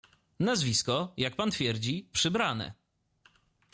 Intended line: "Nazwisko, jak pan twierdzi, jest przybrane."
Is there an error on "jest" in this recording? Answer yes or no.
yes